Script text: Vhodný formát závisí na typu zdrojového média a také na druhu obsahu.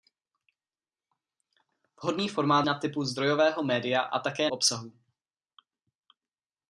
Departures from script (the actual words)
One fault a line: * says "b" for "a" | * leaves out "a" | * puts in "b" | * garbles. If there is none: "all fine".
* leaves out "závisí"
* leaves out "na druhu"